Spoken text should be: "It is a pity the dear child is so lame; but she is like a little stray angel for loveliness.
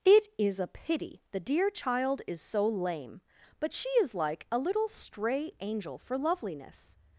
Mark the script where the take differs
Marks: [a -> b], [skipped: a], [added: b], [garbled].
"It is a pity the dear child is so lame; but she is like a little stray angel for loveliness.